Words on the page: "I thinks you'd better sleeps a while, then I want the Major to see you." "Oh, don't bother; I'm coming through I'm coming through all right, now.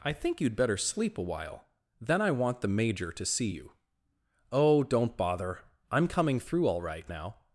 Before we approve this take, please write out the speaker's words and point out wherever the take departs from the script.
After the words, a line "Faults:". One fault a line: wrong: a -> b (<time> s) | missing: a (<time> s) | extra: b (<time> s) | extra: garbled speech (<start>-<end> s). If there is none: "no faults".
"I think you'd better sleep a while, then I want the Major to see you." "Oh, don't bother; I'm coming through all right, now.
Faults:
wrong: thinks -> think (0.1 s)
wrong: sleeps -> sleep (0.8 s)
missing: I'm coming through (6.7 s)